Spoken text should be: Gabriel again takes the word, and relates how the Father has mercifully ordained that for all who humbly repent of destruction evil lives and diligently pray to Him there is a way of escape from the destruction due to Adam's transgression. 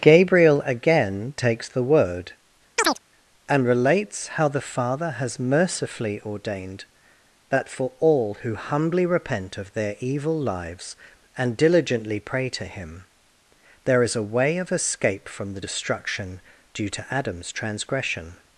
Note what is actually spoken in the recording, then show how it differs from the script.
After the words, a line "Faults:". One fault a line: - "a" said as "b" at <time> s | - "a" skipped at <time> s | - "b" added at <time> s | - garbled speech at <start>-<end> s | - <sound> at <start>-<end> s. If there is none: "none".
Gabriel again takes the word, and relates how the Father has mercifully ordained that for all who humbly repent of their evil lives and diligently pray to Him there is a way of escape from the destruction due to Adam's transgression.
Faults:
- chirp at 2.8-3.0 s
- "destruction" said as "their" at 9.7 s